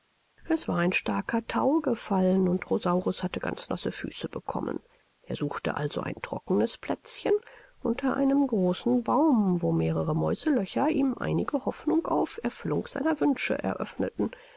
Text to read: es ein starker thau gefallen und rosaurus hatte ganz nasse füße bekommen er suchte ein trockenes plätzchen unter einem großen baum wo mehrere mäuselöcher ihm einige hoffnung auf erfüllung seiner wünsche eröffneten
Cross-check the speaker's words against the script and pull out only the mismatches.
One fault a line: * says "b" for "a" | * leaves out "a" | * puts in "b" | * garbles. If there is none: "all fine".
* puts in "war"
* puts in "also"